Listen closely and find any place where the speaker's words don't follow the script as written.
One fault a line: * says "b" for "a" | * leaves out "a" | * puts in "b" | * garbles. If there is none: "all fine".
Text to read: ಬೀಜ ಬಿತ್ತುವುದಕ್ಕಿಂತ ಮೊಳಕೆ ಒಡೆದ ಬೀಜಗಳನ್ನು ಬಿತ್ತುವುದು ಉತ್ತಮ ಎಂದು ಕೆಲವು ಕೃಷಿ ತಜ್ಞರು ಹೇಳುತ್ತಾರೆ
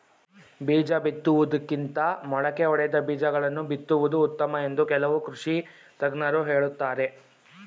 all fine